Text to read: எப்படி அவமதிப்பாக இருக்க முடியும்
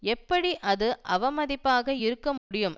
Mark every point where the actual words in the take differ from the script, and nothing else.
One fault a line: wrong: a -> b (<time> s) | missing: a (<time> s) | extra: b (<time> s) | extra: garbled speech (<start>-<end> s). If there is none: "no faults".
extra: அது (0.6 s)